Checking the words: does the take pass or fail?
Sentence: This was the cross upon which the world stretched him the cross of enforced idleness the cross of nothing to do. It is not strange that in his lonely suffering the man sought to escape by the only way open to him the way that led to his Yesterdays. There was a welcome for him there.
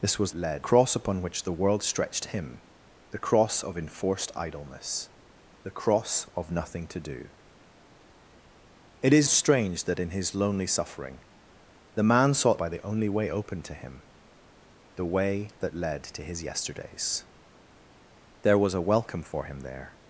fail